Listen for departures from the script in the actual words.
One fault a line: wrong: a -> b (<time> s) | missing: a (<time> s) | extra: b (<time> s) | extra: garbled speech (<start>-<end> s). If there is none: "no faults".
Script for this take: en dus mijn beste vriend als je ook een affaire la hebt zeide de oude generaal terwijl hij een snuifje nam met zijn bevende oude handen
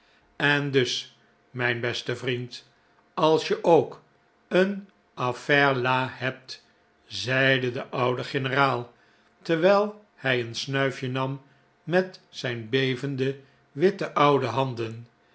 extra: witte (13.7 s)